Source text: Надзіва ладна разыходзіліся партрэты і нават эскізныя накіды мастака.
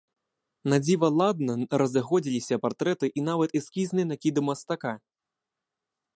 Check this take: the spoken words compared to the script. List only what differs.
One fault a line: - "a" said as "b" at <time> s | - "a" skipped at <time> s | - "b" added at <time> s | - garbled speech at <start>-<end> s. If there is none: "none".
none